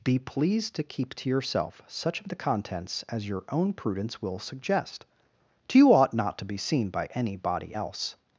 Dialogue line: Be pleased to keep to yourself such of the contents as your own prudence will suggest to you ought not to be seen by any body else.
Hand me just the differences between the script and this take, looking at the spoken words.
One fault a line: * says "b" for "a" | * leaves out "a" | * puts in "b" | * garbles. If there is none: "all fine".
all fine